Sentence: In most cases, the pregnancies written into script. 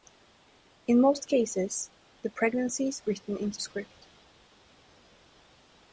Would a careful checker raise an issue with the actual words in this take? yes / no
no